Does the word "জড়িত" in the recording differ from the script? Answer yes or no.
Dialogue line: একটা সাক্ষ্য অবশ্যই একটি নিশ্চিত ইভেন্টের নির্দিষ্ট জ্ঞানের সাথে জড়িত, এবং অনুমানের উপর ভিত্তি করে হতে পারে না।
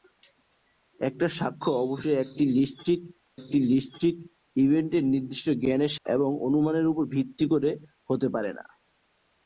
yes